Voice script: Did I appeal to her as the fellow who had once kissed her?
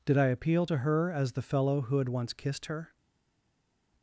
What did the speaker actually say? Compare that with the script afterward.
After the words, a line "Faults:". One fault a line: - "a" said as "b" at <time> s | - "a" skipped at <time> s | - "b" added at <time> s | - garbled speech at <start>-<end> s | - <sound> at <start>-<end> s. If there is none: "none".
Did I appeal to her as the fellow who had once kissed her?
Faults:
none